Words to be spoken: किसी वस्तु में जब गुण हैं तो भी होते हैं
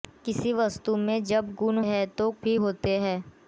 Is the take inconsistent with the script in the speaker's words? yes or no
no